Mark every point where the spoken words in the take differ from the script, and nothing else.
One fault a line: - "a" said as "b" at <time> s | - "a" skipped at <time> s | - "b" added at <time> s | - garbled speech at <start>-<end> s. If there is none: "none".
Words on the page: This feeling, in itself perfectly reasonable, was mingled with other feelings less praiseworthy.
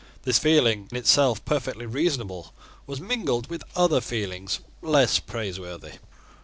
- "in" skipped at 0.9 s